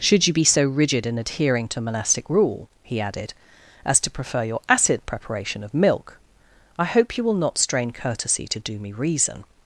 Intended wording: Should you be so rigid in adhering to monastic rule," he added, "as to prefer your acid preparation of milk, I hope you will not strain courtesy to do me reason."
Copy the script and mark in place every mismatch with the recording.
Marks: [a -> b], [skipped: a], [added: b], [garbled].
Should you be so rigid in adhering to monastic rule," he added, "as to prefer your acid preparation of milk, I hope you will not strain courtesy to do me reason."